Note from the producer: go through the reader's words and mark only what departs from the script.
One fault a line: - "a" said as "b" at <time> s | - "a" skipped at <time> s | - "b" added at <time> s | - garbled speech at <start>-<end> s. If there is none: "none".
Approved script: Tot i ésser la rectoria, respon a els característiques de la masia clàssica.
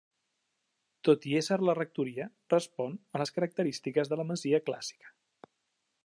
- "els" said as "les" at 3.2 s